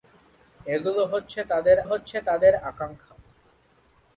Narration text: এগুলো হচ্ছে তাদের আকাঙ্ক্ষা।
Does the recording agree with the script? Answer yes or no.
no